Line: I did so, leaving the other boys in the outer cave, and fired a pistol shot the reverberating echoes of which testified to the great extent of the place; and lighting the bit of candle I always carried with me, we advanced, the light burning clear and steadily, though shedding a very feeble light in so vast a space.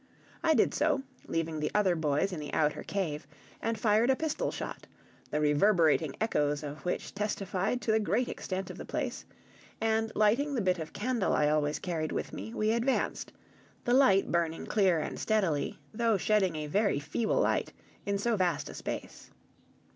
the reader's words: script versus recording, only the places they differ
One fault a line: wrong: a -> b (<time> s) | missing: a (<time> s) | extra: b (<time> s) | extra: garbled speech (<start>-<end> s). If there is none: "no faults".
no faults